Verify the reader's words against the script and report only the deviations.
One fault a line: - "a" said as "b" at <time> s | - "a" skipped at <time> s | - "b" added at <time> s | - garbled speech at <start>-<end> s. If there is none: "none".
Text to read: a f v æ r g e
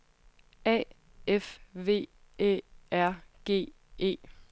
none